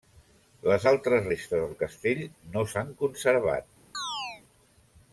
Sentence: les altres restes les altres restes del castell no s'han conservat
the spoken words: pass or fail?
fail